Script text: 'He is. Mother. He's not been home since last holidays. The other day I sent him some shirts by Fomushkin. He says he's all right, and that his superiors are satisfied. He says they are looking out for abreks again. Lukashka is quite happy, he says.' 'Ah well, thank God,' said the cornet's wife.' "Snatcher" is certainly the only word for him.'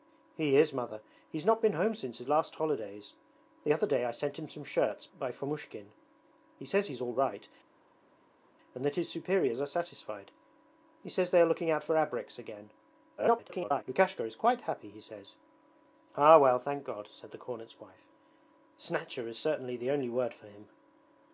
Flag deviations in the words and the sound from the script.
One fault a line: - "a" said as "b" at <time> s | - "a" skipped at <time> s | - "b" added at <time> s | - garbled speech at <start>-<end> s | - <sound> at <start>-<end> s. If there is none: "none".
- garbled speech at 13.2-13.8 s